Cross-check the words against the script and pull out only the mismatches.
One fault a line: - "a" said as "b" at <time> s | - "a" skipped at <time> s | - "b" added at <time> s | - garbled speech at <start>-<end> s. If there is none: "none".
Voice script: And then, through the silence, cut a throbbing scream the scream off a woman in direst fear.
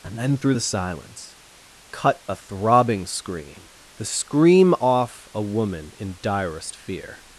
none